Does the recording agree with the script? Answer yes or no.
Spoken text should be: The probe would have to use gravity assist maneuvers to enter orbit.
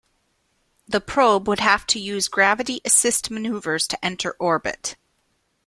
yes